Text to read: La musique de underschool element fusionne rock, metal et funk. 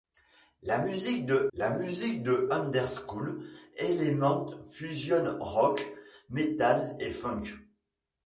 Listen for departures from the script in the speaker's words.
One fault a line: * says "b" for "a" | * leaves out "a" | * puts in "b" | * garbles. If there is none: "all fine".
* puts in "la musique de"